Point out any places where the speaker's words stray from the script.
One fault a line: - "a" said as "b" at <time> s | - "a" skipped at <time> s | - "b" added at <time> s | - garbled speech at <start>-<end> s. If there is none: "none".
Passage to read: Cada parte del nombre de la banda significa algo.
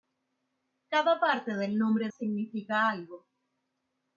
- "de la banda" skipped at 2.1 s